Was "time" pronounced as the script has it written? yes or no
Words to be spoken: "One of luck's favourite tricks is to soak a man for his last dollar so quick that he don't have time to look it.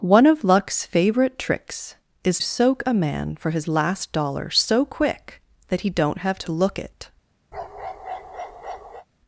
no